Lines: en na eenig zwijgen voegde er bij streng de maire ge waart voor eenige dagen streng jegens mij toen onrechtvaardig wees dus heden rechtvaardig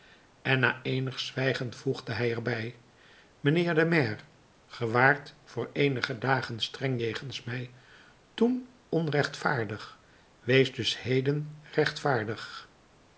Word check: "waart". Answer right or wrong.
right